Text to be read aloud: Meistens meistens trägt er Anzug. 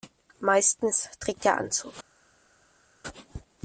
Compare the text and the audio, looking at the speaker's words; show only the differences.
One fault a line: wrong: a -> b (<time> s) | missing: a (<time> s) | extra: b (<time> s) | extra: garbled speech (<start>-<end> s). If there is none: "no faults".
missing: meistens (1.1 s)